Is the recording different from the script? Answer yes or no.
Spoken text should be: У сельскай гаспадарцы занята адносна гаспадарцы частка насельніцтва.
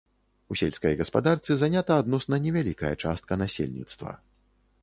yes